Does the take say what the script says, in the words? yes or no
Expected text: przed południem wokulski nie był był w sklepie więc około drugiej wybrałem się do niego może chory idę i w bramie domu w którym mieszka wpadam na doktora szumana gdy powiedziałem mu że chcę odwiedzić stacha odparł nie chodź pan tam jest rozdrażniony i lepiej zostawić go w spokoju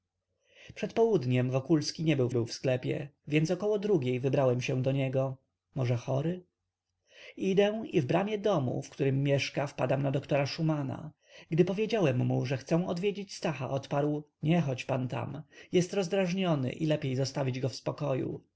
yes